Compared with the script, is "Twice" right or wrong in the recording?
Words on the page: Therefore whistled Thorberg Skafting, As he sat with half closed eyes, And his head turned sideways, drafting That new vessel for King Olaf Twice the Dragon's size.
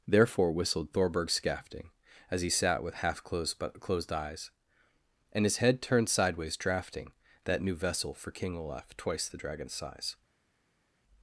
right